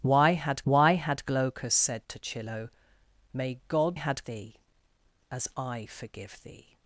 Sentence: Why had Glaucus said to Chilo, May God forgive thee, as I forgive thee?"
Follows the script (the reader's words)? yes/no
no